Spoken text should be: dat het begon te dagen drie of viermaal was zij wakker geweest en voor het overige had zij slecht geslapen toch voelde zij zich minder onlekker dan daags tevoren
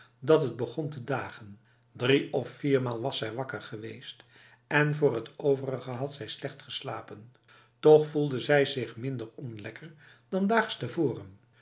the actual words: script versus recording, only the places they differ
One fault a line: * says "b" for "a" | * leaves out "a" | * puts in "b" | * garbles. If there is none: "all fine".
all fine